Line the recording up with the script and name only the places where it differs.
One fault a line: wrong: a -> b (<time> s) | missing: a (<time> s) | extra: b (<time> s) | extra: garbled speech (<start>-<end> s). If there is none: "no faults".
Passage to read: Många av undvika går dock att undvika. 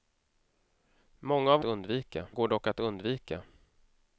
no faults